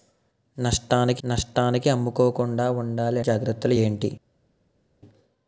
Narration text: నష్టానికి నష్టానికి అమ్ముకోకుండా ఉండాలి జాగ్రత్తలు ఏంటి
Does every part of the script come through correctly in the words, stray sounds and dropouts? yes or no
yes